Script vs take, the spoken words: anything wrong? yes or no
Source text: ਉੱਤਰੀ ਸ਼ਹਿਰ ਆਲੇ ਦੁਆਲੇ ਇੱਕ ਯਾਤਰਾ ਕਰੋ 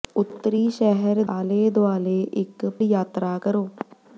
no